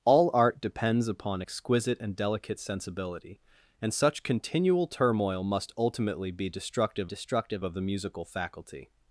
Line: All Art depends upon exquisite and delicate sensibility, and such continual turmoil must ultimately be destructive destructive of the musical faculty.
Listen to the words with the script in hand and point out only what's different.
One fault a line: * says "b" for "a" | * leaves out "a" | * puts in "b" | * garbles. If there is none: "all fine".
all fine